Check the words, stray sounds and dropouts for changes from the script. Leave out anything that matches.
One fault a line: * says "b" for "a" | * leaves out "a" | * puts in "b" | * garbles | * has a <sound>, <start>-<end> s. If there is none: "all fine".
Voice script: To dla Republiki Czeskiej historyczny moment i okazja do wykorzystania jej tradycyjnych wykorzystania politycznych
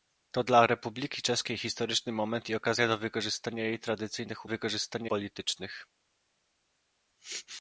all fine